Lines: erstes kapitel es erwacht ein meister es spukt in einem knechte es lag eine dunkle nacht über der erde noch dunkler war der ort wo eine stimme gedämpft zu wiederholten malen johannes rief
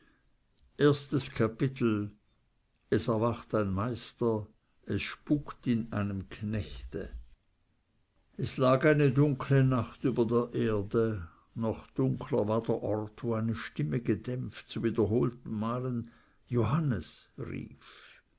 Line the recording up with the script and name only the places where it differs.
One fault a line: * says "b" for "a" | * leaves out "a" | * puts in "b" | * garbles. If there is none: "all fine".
all fine